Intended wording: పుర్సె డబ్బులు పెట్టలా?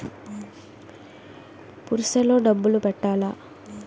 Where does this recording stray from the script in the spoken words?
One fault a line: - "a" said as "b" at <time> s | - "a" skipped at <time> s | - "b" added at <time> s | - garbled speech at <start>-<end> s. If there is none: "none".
- "లో" added at 2.2 s